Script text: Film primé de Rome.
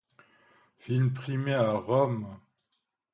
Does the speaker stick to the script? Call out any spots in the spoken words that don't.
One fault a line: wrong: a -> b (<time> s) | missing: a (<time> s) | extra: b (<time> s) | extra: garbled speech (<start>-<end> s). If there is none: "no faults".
wrong: de -> à (1.5 s)